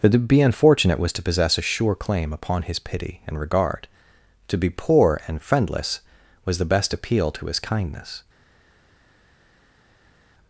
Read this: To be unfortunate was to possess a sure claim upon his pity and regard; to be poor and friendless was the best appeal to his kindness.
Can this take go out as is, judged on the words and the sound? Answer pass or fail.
fail